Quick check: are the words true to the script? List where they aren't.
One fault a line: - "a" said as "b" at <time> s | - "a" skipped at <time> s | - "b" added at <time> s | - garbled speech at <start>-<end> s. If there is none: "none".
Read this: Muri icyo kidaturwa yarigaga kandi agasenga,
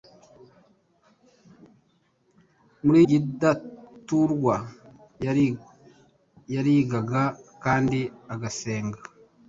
- "icyo" skipped at 3.0 s